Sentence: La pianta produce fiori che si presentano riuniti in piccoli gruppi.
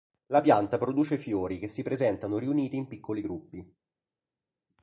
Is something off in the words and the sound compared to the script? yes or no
no